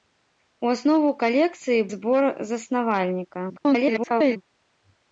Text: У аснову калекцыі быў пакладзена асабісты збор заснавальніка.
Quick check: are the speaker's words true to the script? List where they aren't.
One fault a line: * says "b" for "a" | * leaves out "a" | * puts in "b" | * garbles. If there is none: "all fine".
* leaves out "быў пакладзена асабісты"
* garbles